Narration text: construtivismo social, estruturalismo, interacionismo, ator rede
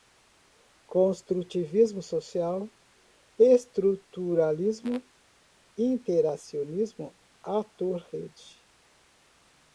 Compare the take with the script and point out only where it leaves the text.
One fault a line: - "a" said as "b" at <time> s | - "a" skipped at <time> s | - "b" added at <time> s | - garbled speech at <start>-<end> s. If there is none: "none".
none